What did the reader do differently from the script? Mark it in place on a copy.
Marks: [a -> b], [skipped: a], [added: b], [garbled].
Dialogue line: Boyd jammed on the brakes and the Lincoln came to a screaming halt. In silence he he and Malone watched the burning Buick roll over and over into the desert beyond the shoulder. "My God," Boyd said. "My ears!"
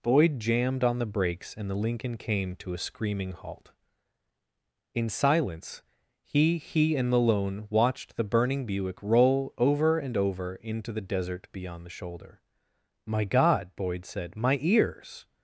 Boyd jammed on the brakes and the Lincoln came to a screaming halt. In silence he he and Malone watched the burning Buick roll over and over into the desert beyond the shoulder. "My God," Boyd said. "My ears!"